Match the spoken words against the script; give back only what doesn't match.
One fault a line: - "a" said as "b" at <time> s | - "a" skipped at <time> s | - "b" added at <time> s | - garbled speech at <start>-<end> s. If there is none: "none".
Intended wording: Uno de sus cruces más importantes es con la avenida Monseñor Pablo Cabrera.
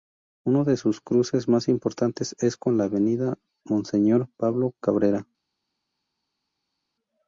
none